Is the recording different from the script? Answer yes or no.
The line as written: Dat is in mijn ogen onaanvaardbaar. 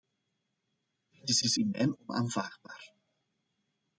yes